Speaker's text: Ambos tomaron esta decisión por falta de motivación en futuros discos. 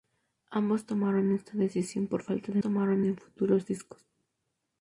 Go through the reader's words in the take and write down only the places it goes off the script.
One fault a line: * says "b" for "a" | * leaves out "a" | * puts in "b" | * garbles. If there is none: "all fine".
* says "tomaron" for "motivación"